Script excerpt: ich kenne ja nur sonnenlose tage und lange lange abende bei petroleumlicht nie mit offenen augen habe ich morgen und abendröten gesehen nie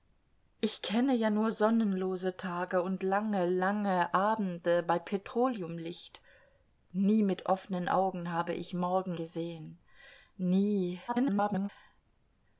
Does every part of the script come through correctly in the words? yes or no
no